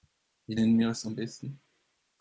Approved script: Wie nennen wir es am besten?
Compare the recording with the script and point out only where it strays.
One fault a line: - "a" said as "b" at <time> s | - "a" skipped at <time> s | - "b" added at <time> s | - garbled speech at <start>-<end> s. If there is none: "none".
none